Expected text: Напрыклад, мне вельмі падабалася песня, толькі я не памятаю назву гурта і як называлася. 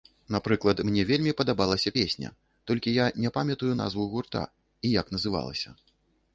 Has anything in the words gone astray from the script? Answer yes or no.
no